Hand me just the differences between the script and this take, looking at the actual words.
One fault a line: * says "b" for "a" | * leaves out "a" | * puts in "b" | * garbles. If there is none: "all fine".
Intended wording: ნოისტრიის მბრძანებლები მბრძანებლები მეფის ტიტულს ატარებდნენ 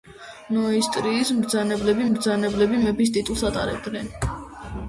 all fine